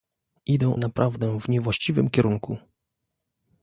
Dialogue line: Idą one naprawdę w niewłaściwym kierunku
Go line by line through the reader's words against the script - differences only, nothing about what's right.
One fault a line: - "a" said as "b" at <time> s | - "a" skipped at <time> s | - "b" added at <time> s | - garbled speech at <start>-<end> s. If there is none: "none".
- "one" skipped at 0.8 s